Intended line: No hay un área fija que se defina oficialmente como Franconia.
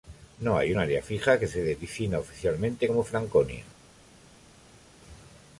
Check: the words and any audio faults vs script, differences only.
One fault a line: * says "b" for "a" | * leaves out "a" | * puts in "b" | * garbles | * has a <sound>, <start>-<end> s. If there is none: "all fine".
all fine